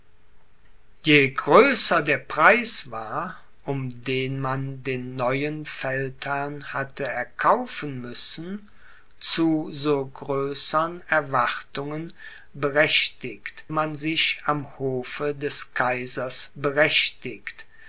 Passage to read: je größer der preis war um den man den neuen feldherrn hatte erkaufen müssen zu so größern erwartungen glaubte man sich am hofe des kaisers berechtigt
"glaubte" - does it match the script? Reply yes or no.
no